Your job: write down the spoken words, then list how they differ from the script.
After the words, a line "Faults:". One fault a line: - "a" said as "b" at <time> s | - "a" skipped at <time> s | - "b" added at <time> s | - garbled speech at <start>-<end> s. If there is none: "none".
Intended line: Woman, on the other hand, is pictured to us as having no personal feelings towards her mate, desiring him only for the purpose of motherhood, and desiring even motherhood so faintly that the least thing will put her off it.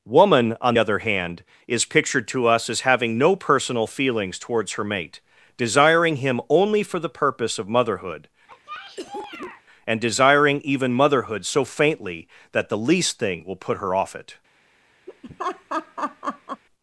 Woman, on other hand, is pictured to us as having no personal feelings towards her mate, desiring him only for the purpose of motherhood, and desiring even motherhood so faintly that the least thing will put her off it.
Faults:
- "the" skipped at 0.7 s